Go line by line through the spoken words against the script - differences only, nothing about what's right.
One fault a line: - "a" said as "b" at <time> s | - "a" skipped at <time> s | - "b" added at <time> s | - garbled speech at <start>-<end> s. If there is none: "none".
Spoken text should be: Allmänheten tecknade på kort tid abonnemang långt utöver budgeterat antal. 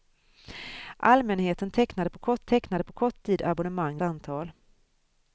- "tid abonnemang långt utöver budgeterat" said as "tecknade på kort tid abonnemang" at 2.5 s